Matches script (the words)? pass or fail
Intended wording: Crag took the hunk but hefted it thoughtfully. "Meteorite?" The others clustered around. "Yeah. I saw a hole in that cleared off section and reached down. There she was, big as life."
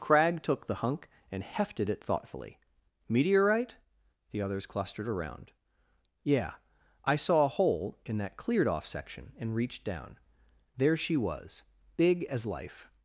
fail